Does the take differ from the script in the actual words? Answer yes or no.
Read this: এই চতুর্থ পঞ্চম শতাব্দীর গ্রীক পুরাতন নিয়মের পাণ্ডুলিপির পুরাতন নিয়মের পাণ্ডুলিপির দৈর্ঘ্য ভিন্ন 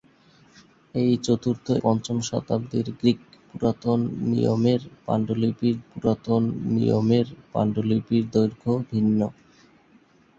no